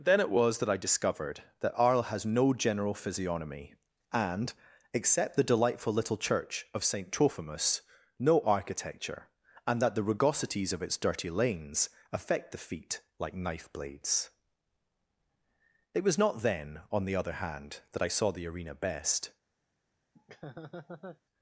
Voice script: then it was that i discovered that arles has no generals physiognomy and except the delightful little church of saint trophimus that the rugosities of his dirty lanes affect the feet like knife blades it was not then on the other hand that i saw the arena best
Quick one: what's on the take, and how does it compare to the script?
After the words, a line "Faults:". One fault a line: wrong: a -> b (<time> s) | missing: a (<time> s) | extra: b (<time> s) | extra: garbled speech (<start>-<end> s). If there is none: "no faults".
then it was that i discovered that arles has no general physiognomy and except the delightful little church of saint trophimus no architecture and that the rugosities of its dirty lanes affect the feet like knife blades it was not then on the other hand that i saw the arena best
Faults:
wrong: generals -> general (2.5 s)
extra: no architecture and (8.2 s)
wrong: his -> its (10.8 s)